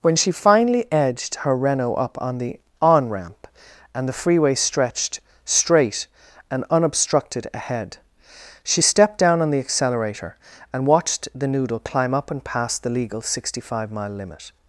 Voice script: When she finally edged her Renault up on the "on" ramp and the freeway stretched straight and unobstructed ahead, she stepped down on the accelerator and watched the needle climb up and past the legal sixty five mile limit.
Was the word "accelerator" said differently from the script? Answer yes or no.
no